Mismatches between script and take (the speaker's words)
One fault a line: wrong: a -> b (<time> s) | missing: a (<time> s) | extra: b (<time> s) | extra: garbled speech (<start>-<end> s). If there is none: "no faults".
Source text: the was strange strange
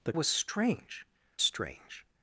no faults